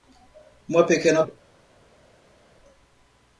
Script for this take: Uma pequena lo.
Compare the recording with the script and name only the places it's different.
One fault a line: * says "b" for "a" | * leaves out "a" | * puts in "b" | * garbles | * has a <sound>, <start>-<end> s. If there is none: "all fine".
all fine